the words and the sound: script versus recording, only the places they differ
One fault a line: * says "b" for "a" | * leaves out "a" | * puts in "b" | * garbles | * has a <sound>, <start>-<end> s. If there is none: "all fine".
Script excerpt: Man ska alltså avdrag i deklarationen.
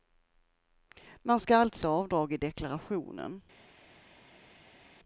all fine